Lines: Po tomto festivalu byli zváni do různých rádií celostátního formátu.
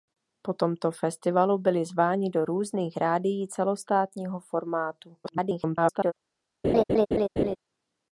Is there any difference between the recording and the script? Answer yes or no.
yes